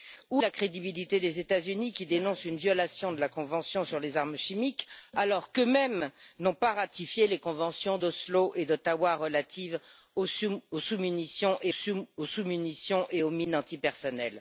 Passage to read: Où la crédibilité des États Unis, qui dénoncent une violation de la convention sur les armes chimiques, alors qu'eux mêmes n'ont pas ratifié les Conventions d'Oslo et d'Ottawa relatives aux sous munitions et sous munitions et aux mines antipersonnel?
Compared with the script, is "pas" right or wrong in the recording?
right